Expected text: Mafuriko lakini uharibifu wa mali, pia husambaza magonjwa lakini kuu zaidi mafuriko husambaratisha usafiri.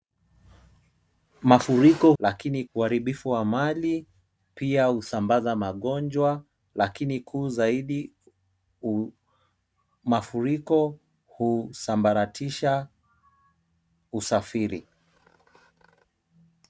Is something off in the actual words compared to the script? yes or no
no